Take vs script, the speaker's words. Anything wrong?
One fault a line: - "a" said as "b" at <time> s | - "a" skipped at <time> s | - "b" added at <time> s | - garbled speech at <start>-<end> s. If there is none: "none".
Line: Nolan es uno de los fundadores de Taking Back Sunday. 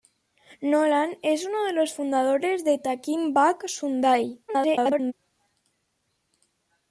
- garbled speech at 4.5-5.1 s